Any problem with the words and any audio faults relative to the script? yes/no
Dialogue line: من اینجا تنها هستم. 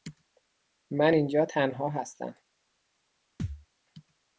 yes